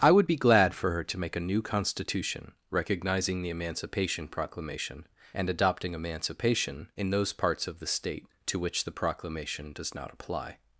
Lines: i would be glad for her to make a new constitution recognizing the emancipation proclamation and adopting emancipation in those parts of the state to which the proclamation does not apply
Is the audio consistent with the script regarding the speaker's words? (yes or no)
yes